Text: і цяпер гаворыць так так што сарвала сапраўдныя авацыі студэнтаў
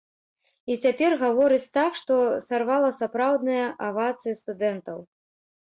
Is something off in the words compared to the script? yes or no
yes